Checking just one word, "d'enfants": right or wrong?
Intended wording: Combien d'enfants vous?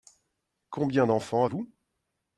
right